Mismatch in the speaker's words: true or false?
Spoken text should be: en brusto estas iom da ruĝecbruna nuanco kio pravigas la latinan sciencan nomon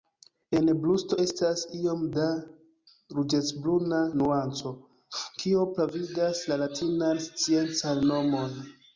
false